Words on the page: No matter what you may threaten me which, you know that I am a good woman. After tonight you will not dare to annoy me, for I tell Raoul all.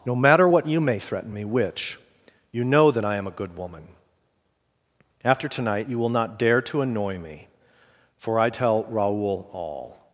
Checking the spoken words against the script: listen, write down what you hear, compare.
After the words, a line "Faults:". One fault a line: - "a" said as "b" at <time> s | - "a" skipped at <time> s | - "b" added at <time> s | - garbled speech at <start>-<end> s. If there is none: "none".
No matter what you may threaten me which, you know that I am a good woman. After tonight you will not dare to annoy me, for I tell Raoul all.
Faults:
none